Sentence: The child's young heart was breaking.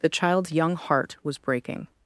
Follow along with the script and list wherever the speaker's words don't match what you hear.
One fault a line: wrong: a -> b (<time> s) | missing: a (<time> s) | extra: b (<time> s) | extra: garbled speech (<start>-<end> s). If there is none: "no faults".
no faults